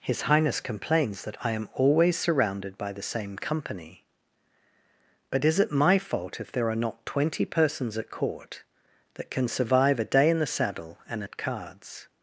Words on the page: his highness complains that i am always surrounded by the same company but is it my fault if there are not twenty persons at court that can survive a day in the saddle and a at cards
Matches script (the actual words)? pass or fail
pass